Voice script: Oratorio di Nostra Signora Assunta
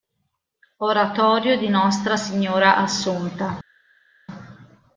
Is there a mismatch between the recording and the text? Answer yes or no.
no